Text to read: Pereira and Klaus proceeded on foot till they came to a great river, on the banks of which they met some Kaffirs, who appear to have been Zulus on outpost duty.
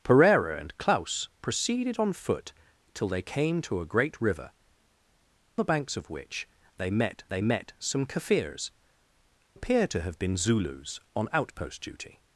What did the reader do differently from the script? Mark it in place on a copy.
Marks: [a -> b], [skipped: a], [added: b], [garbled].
Pereira and Klaus proceeded on foot till they came to a great river, [skipped: on] the banks of which they met [added: they met] some Kaffirs, [skipped: who] appear to have been Zulus on outpost duty.